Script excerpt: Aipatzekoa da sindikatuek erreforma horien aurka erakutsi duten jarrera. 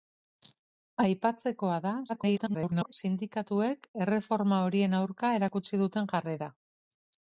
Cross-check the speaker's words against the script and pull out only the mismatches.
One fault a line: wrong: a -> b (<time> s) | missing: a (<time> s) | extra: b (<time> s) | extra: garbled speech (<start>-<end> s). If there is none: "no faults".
extra: garbled speech (2.1-2.9 s)